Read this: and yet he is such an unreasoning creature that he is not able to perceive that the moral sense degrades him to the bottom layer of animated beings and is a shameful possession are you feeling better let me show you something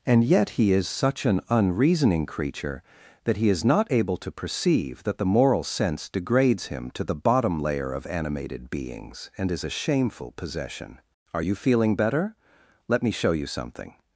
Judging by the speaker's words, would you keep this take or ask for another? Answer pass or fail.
pass